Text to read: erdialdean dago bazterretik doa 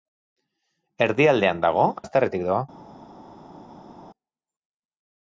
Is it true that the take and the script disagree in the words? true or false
false